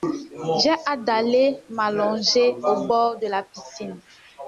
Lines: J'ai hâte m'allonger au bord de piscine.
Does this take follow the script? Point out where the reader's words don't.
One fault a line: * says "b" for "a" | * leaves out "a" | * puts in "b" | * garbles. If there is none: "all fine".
* puts in "d'aller"
* puts in "la"